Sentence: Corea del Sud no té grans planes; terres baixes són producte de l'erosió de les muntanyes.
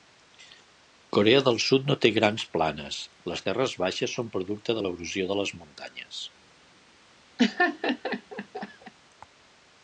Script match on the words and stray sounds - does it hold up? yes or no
no